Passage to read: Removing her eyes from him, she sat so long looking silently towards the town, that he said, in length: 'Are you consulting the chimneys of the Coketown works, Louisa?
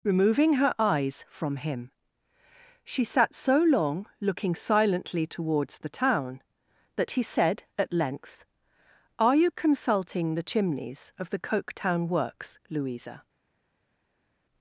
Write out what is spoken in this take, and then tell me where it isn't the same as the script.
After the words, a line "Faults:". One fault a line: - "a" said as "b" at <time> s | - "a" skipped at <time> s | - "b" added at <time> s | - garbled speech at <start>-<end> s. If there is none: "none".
Removing her eyes from him, she sat so long looking silently towards the town, that he said, at length: 'Are you consulting the chimneys of the Coketown works, Louisa?
Faults:
- "in" said as "at" at 7.8 s